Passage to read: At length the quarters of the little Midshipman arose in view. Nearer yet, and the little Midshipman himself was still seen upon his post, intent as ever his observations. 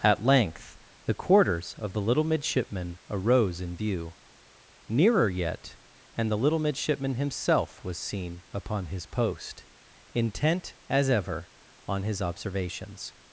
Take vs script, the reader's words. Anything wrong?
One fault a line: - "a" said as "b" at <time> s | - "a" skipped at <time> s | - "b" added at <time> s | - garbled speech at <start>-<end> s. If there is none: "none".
- "still" skipped at 8.0 s
- "on" added at 11.9 s